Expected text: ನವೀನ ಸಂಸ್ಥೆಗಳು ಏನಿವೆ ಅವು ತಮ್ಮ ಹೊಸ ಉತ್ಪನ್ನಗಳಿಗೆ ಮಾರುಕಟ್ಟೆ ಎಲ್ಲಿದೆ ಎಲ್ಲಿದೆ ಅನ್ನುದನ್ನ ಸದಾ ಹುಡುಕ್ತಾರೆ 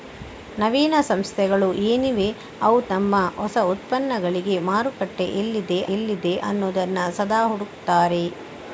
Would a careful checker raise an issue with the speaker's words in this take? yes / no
no